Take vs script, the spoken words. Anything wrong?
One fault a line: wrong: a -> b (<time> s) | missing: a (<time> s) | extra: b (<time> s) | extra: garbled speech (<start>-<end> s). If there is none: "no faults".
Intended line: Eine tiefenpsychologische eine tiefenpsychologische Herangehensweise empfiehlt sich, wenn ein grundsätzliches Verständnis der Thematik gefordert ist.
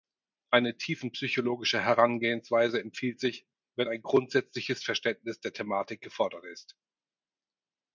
missing: eine tiefenpsychologische (1.8 s)